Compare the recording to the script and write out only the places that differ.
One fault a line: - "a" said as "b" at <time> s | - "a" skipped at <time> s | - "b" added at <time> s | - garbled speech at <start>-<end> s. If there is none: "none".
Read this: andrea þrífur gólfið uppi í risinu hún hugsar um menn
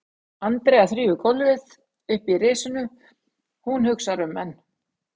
none